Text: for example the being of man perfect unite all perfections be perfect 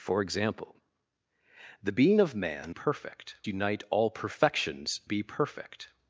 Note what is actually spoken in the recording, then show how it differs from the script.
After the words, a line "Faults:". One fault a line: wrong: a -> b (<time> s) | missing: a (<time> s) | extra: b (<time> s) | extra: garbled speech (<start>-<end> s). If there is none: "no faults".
for example the being of man perfect unite all perfections be perfect
Faults:
no faults